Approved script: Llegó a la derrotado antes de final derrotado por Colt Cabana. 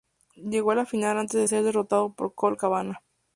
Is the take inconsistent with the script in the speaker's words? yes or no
yes